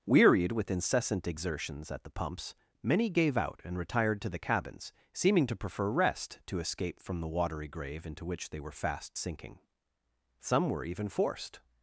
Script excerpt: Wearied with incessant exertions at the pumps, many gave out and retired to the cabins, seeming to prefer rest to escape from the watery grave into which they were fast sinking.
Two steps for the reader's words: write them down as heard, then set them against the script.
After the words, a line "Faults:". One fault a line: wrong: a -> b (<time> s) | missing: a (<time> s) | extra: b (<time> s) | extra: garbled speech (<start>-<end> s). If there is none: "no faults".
Wearied with incessant exertions at the pumps, many gave out and retired to the cabins, seeming to prefer rest to escape from the watery grave into which they were fast sinking. Some were even forced
Faults:
extra: Some were even forced (10.4 s)